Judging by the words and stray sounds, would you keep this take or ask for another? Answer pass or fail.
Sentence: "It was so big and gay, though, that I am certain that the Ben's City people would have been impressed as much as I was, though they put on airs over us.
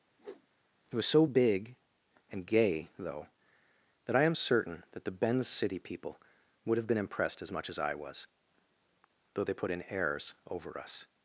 fail